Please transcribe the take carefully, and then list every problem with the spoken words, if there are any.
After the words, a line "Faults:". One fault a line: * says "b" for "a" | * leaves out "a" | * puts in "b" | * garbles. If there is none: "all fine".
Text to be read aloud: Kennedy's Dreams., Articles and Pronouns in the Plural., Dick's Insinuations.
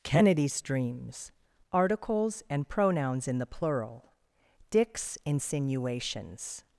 Kennedy's Dreams., Articles and Pronouns in the Plural., Dick's Insinuations.
Faults:
all fine